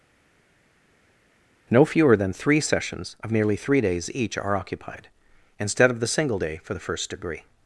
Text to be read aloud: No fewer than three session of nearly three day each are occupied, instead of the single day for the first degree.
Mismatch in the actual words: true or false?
true